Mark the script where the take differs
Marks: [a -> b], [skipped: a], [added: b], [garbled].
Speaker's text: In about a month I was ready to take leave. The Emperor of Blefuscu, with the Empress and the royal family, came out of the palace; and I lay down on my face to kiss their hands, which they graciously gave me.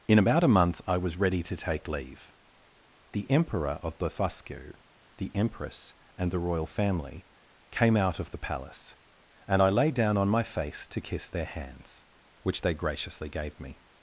In about a month I was ready to take leave. The Emperor of Blefuscu, [skipped: with] the Empress and the royal family, came out of the palace; and I lay down on my face to kiss their hands, which they graciously gave me.